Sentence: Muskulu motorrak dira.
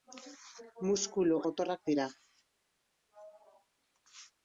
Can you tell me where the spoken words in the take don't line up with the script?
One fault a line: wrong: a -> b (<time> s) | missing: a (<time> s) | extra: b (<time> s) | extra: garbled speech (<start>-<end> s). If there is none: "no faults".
no faults